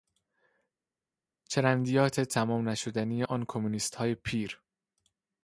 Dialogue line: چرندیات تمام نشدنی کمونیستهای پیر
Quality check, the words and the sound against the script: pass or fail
fail